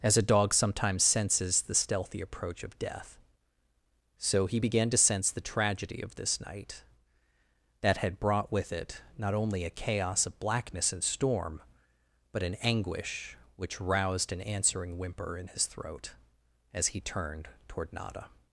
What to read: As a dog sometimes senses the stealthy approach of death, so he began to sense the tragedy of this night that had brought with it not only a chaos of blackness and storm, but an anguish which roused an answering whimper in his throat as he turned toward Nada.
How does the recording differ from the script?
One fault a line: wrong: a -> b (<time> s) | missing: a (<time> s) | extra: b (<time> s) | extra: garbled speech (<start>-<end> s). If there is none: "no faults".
no faults